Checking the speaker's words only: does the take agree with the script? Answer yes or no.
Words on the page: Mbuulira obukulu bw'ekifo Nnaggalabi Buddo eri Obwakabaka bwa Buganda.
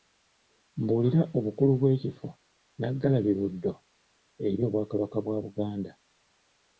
yes